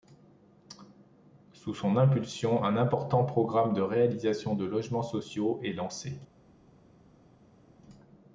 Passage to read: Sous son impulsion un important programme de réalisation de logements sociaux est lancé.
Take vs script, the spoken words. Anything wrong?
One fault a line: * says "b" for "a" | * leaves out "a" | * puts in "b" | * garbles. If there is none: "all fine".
all fine